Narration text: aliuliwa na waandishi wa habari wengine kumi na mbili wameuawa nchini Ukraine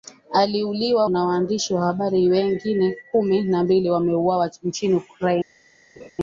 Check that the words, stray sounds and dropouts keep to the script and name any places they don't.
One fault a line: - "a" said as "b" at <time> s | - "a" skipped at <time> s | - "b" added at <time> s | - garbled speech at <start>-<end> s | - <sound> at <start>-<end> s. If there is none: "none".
- laugh at 5.9-6.1 s